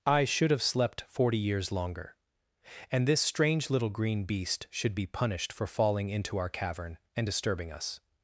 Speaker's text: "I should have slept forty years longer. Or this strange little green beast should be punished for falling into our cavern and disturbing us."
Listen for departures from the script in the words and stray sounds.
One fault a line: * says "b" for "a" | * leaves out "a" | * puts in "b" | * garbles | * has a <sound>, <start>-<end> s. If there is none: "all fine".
* says "And" for "Or"